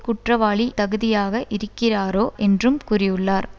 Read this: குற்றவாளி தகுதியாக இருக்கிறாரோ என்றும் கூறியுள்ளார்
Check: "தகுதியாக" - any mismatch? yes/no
no